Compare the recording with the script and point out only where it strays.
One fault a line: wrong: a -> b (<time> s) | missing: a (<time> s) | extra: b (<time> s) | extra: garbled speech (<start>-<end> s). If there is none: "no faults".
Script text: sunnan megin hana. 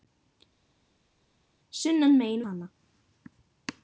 no faults